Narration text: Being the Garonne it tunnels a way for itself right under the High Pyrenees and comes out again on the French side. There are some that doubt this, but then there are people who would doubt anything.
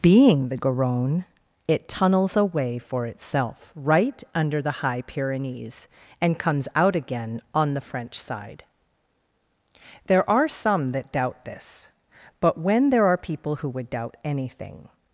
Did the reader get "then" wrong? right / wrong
wrong